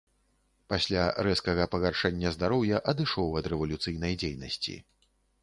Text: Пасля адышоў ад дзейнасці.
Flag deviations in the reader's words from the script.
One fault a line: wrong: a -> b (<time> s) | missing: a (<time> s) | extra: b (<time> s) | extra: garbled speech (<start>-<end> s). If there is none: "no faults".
extra: рэзкага пагаршэння здароўя (1.3 s)
extra: рэвалюцыйнай (3.5 s)